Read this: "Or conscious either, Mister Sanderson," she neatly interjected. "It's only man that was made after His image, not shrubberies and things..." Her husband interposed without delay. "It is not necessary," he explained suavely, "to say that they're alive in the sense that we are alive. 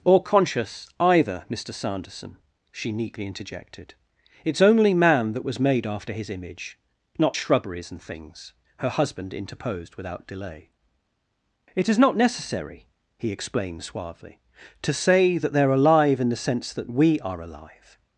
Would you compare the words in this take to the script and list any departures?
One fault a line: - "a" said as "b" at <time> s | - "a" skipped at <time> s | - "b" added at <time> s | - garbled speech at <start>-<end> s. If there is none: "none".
none